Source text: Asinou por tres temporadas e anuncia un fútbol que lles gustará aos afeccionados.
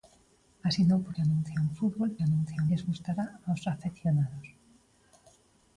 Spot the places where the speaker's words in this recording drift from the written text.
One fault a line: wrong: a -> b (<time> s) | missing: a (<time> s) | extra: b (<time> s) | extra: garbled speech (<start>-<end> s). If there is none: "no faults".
missing: tres temporadas (1.1 s)
wrong: que -> anuncia (2.2 s)